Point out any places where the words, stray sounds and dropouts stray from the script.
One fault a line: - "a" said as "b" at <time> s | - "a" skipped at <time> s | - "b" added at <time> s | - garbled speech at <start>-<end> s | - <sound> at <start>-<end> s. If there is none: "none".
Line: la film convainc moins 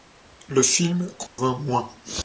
- "la" said as "le" at 0.5 s
- dropout at 1.3-1.4 s